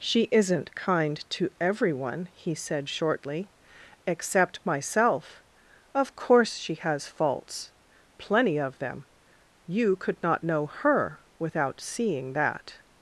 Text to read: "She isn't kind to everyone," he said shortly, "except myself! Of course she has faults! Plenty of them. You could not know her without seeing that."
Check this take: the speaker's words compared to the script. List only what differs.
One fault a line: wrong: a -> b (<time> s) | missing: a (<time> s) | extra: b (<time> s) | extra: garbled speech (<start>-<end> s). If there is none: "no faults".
no faults